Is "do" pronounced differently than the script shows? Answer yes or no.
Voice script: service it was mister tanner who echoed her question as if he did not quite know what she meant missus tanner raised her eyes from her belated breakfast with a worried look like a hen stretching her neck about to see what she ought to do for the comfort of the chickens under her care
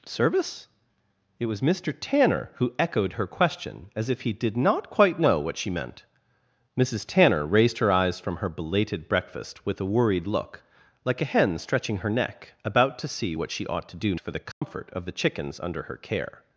no